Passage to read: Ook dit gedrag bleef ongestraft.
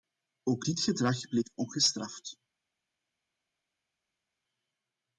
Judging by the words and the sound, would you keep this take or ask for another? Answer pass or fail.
pass